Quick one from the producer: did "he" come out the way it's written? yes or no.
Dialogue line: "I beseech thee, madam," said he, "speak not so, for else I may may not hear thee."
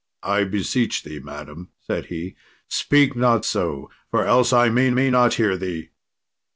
yes